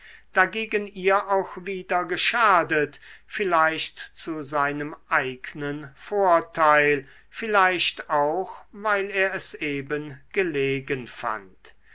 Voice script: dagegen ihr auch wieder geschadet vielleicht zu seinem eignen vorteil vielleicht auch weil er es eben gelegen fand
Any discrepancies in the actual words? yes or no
no